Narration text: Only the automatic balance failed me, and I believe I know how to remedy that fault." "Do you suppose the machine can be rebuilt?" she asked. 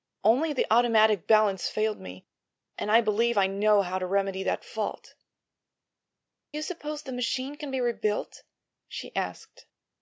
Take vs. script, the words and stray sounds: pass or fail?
fail